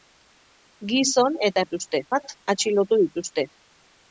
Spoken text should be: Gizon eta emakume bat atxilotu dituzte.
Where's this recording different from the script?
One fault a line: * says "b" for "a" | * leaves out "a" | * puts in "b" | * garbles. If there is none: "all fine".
* says "dituzte" for "emakume"